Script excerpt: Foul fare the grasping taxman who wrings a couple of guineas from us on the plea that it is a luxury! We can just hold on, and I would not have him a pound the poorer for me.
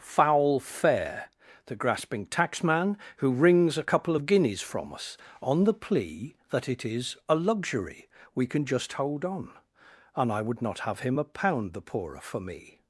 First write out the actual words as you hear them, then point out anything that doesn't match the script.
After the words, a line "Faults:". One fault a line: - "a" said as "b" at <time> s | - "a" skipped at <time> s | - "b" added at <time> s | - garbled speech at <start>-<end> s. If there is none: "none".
Foul fare the grasping taxman who wrings a couple of guineas from us on the plea that it is a luxury! We can just hold on, and I would not have him a pound the poorer for me.
Faults:
none